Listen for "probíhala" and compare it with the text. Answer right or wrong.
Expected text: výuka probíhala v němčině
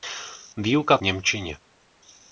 wrong